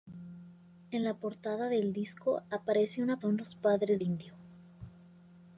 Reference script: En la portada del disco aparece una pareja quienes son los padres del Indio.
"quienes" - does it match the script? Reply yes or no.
no